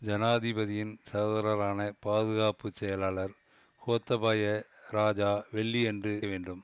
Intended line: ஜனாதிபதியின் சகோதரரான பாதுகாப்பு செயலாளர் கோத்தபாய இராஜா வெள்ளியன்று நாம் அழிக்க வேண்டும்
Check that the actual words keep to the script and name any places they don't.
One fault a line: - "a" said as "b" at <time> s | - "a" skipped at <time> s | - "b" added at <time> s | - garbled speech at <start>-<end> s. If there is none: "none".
- "நாம் அழிக்க" skipped at 6.1 s